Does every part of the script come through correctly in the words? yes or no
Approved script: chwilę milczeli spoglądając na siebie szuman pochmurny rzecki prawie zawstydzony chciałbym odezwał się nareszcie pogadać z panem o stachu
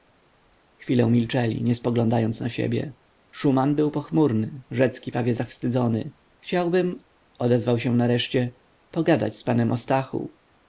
no